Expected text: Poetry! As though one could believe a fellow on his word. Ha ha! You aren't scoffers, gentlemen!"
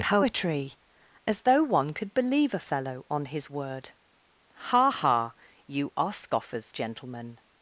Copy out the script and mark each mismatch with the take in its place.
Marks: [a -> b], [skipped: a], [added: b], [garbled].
Poetry! As though one could believe a fellow on his word. Ha ha! You [aren't -> are] scoffers, gentlemen!"